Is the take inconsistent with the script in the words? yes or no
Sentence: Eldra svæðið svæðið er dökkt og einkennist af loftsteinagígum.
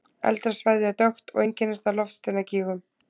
yes